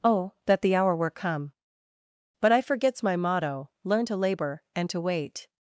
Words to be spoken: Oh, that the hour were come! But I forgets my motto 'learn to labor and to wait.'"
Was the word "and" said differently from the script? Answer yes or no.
no